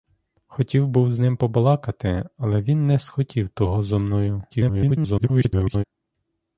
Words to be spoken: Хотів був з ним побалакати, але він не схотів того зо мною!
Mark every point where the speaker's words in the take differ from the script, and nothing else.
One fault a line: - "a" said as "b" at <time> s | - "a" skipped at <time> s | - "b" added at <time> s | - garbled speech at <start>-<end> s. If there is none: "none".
- garbled speech at 4.5-5.8 s